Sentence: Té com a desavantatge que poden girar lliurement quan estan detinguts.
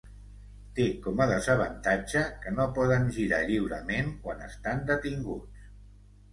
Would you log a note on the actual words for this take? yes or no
yes